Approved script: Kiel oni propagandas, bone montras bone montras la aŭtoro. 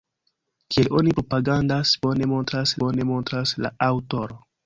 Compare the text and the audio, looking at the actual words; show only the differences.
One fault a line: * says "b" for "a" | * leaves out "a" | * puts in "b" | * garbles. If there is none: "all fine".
all fine